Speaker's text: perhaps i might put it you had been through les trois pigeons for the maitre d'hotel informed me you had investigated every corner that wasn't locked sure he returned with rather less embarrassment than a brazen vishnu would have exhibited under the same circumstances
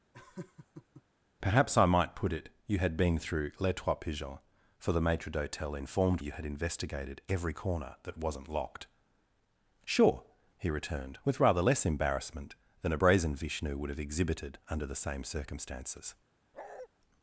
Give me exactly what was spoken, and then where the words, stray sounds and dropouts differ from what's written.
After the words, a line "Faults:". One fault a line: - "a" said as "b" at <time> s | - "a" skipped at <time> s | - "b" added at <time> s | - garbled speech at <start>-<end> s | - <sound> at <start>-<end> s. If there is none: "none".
perhaps i might put it you had been through les trois pigeons for the maitre d'hotel informed you had investigated every corner that wasn't locked sure he returned with rather less embarrassment than a brazen vishnu would have exhibited under the same circumstances
Faults:
- laugh at 0.1-1.0 s
- "me" skipped at 6.2 s
- bark at 16.5-16.9 s